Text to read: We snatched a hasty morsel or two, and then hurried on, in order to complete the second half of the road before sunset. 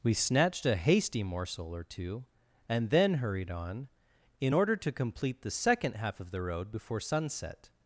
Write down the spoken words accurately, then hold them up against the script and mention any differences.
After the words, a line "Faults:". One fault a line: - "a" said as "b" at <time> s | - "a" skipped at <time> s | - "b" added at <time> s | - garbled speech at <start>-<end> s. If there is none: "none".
We snatched a hasty morsel or two, and then hurried on, in order to complete the second half of the road before sunset.
Faults:
none